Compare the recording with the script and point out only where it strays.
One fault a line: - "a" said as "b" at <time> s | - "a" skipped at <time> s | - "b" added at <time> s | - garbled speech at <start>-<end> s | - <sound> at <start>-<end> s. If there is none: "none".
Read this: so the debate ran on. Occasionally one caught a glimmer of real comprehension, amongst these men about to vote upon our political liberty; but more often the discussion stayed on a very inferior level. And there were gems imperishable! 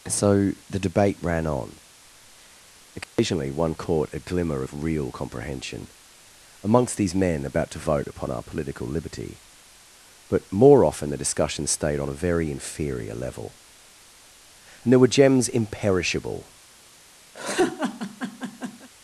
- dropout at 3.0-3.2 s
- laugh at 17.3-18.9 s